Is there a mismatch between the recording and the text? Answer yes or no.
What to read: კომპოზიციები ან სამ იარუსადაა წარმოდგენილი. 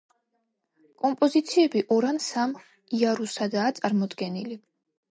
yes